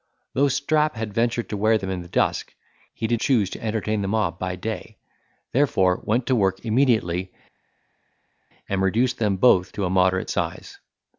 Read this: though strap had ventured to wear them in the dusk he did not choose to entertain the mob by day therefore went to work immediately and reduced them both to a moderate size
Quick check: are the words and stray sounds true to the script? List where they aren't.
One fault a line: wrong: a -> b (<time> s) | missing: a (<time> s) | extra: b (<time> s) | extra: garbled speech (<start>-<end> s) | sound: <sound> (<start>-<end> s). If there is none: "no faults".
missing: not (3.2 s)